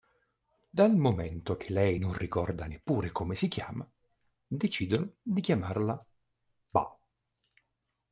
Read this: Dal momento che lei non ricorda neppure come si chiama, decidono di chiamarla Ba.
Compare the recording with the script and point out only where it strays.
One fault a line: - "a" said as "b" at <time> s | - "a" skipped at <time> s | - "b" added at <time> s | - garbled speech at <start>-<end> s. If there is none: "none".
none